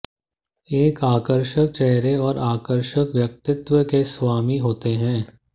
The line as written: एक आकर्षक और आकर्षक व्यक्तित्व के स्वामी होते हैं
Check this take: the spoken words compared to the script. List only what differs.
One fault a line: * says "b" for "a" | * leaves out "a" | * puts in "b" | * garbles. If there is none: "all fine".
* puts in "चेहरे"